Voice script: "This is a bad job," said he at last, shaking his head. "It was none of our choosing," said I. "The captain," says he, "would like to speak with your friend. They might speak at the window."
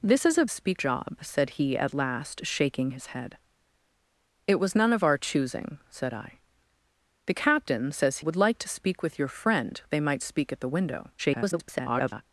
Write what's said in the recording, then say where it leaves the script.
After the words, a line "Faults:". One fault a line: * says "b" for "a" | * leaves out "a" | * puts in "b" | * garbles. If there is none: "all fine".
"This is a speak job," said he at last, shaking his head. "It was none of our choosing," said I. "The captain," says "would like to speak with your friend. They might speak at the window." [garbled]
Faults:
* says "speak" for "bad"
* leaves out "he"
* garbles